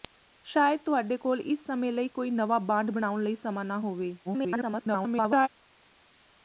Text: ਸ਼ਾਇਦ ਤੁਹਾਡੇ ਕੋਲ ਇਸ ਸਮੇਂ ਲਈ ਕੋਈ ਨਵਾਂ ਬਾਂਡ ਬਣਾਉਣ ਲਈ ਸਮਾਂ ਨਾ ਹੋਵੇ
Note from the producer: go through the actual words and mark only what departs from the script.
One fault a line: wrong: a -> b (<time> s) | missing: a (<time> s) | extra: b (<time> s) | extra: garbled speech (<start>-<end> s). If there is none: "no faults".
extra: garbled speech (4.2-5.5 s)